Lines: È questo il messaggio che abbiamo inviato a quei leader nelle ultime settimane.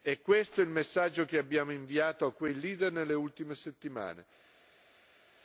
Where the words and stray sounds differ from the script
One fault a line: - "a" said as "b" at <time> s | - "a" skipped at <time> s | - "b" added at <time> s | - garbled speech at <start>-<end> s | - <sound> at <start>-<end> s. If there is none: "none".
none